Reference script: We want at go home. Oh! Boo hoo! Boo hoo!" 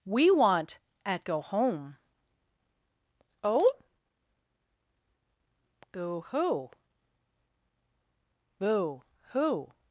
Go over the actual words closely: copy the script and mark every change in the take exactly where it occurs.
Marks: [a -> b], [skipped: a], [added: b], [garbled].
We want at go home. Oh! Boo hoo! Boo hoo!"